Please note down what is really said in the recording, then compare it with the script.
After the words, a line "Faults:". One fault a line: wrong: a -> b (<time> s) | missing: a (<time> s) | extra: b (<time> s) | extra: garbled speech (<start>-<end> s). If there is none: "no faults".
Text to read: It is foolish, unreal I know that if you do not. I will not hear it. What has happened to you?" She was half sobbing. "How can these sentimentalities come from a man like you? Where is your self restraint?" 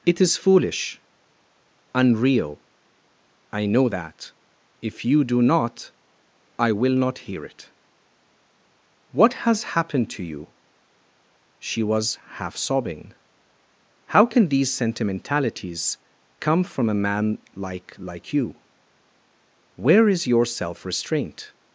It is foolish, unreal I know that if you do not. I will not hear it. What has happened to you?" She was half sobbing. "How can these sentimentalities come from a man like like you? Where is your self restraint?"
Faults:
extra: like (18.0 s)